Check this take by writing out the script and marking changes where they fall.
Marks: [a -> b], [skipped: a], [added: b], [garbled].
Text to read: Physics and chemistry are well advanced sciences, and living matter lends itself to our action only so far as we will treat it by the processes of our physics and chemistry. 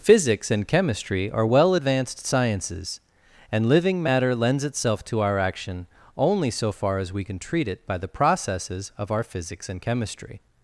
Physics and chemistry are well advanced sciences, and living matter lends itself to our action only so far as we [will -> can] treat it by the processes of our physics and chemistry.